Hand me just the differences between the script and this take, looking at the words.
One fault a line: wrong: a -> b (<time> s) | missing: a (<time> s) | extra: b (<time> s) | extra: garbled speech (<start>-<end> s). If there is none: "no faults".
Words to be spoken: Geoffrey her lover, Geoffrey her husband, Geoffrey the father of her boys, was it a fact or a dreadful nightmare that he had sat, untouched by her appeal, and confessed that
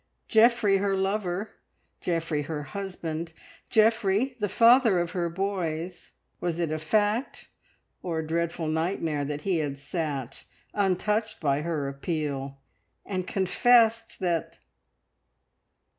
no faults